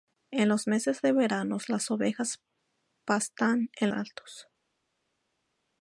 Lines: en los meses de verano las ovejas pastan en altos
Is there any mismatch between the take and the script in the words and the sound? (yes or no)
no